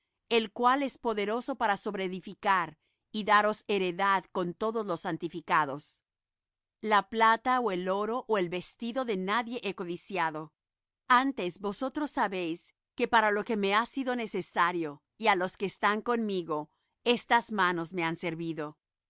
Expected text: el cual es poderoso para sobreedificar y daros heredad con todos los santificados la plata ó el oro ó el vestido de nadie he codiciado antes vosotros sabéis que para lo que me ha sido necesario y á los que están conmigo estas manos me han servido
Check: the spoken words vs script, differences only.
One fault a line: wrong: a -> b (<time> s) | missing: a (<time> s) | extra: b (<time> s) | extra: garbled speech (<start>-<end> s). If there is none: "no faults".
no faults